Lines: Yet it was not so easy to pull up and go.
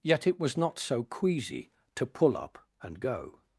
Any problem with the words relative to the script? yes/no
yes